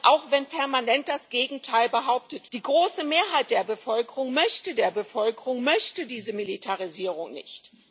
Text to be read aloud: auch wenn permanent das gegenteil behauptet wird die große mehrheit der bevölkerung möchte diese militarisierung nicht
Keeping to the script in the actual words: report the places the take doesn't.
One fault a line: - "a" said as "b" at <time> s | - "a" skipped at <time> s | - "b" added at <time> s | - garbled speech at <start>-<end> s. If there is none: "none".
- "wird" skipped at 2.5 s
- "der bevölkerung möchte" added at 4.8 s